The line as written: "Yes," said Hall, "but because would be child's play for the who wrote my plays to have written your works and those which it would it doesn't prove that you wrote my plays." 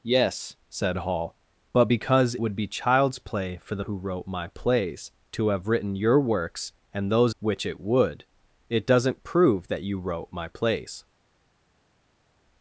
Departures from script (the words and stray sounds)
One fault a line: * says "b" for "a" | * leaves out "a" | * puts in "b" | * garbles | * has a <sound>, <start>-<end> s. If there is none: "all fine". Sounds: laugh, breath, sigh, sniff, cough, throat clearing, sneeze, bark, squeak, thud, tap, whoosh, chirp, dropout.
all fine